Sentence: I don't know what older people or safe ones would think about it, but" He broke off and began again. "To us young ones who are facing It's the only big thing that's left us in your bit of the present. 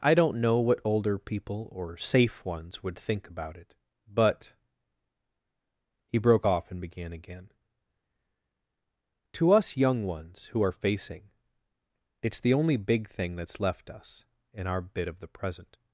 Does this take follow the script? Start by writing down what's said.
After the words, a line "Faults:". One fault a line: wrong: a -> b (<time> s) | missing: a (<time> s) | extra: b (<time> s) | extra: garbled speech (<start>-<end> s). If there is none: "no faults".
I don't know what older people or safe ones would think about it, but" He broke off and began again. "To us young ones who are facing It's the only big thing that's left us in our bit of the present.
Faults:
wrong: your -> our (14.7 s)